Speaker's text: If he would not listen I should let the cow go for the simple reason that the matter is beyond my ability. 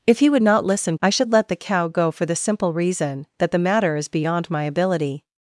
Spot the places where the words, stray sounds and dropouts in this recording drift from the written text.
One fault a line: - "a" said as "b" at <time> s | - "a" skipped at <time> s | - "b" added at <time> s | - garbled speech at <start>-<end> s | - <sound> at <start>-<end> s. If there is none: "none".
none